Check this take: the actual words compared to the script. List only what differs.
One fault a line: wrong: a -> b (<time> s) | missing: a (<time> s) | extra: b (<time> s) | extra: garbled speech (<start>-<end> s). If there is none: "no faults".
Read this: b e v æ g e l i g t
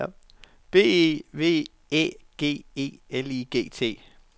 no faults